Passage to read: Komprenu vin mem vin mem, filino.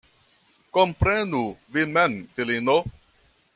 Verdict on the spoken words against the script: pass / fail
fail